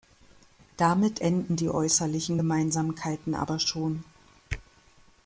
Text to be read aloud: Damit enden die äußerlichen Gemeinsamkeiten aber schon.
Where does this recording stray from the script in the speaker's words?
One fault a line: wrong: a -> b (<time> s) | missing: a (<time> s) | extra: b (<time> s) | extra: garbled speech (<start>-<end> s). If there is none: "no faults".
no faults